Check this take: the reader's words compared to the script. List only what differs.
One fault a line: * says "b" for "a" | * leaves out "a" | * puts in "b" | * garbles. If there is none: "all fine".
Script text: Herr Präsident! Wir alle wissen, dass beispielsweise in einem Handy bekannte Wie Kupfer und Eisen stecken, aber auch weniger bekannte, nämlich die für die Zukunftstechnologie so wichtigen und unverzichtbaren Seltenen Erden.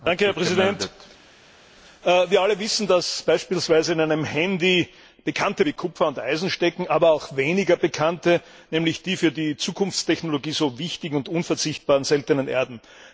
all fine